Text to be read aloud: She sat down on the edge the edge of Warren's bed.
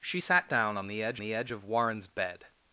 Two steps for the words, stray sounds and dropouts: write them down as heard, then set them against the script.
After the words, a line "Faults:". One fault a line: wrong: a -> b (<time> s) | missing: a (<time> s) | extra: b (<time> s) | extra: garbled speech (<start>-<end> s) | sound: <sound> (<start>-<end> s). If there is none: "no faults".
She sat down on the edge the edge of Warren's bed.
Faults:
no faults